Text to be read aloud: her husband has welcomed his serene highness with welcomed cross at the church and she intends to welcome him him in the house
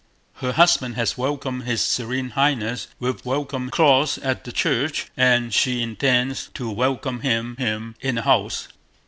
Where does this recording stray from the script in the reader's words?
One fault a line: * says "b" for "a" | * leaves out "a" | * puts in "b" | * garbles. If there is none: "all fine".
all fine